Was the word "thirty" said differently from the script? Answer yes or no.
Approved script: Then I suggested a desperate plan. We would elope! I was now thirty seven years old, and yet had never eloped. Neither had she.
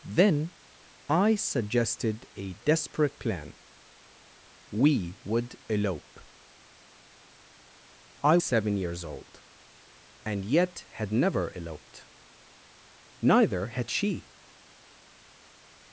yes